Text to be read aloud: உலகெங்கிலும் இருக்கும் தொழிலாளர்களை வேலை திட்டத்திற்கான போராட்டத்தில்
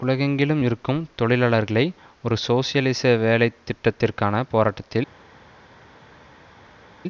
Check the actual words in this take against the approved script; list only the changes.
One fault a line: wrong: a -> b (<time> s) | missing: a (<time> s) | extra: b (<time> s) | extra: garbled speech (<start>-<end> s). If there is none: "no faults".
extra: ஒரு சோசியலிச (2.2 s)